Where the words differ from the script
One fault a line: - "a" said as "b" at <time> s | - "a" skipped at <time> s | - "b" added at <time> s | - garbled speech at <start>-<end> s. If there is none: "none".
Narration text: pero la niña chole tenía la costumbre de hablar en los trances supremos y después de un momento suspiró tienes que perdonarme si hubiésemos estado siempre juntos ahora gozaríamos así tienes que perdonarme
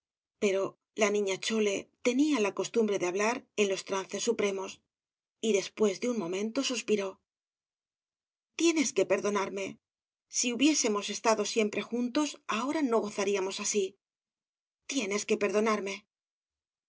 - "no" added at 12.8 s